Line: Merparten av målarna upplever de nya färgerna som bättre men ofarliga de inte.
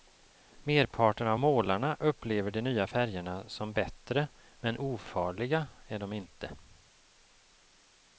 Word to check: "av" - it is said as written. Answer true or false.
true